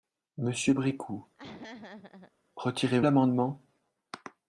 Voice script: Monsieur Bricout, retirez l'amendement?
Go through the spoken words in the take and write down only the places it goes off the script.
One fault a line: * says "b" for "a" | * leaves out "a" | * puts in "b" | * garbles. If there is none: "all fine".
all fine